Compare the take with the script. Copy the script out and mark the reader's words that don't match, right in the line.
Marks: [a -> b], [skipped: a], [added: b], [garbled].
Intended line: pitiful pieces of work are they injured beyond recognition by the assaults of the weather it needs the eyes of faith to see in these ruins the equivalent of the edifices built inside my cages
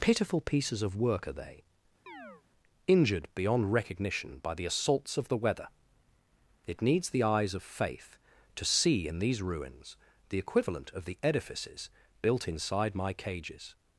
pitiful pieces of work are they injured beyond recognition by the assaults of the weather it needs the eyes of faith to see in these ruins the equivalent of the edifices built inside my cages